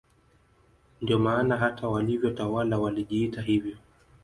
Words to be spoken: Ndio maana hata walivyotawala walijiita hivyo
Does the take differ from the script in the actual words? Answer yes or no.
no